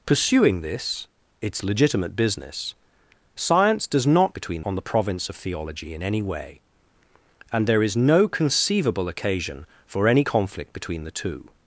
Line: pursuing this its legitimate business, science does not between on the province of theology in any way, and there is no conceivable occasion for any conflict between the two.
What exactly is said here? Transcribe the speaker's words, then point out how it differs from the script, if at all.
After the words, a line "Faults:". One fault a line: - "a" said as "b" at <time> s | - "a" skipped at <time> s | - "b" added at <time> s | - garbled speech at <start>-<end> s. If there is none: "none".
pursuing this its legitimate business, science does not between on the province of theology in any way, and there is no conceivable occasion for any conflict between the two.
Faults:
none